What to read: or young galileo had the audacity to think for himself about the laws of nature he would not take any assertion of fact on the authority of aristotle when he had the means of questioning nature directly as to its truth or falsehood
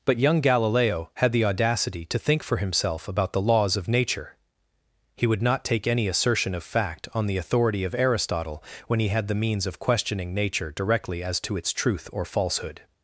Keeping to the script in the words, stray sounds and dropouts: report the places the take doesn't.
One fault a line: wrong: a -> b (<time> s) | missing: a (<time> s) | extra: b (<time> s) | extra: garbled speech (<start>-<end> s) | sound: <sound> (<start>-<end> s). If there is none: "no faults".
wrong: or -> but (0.0 s)